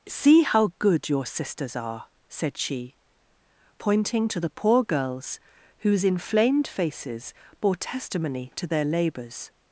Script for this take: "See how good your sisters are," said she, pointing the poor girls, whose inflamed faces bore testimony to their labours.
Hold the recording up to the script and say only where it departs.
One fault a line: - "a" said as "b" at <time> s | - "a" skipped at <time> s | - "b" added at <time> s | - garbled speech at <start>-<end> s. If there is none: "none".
- "to" added at 4.3 s